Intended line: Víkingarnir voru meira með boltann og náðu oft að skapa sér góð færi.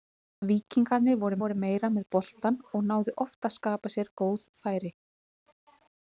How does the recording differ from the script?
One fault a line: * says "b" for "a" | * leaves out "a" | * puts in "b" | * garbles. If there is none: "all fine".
* puts in "voru"